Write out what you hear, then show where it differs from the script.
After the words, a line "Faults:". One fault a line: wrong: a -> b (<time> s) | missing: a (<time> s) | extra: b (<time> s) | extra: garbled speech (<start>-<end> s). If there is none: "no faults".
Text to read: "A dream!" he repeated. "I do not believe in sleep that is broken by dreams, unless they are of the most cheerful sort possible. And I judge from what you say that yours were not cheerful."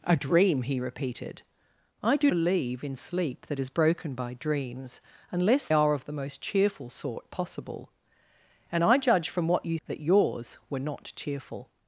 "A dream!" he repeated. "I do believe in sleep that is broken by dreams, unless are of the most cheerful sort possible. And I judge from what you that yours were not cheerful."
Faults:
missing: not (2.3 s)
missing: they (5.7 s)
missing: say (9.8 s)